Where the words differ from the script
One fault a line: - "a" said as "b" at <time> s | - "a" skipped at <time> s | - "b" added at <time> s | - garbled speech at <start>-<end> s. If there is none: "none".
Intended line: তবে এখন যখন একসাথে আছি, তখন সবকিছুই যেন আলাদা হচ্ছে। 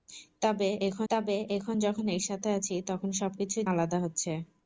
- "তবে এখন" added at 1.1 s
- "যেন" skipped at 3.7 s